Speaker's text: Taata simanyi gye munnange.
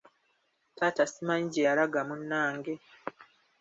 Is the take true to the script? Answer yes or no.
no